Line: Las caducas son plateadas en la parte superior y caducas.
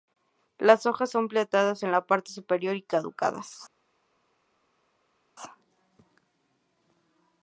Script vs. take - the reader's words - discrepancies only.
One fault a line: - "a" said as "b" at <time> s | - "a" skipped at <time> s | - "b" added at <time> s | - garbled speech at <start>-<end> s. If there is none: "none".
- "caducas" said as "hojas" at 0.9 s